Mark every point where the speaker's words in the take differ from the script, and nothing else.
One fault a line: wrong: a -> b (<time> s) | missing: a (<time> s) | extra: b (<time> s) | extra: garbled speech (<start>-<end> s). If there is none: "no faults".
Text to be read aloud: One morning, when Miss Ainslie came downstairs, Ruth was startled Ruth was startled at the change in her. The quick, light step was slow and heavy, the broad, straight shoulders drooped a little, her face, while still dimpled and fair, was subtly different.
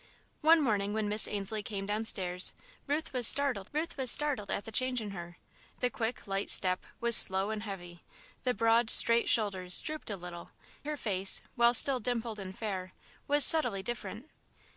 no faults